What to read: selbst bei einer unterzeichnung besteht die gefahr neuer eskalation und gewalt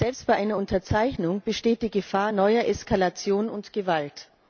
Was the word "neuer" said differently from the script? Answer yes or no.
no